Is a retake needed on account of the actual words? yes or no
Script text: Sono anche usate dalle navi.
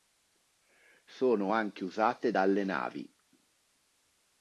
no